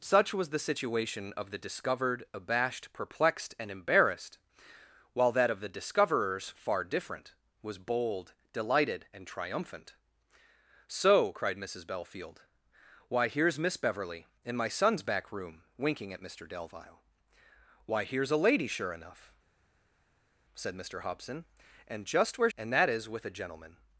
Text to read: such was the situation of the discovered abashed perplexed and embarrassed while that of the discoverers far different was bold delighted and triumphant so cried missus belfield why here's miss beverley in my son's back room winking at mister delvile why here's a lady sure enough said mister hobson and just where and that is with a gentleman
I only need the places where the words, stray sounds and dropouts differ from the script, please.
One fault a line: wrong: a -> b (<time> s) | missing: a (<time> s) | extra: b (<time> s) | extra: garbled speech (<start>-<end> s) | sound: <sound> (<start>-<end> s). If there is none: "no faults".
no faults